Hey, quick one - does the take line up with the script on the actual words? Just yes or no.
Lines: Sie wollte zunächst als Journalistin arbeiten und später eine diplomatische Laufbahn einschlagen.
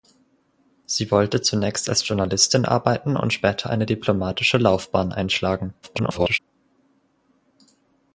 no